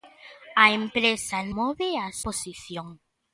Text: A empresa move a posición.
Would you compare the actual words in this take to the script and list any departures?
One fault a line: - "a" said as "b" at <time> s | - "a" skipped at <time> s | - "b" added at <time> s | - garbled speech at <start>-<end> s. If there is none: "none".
none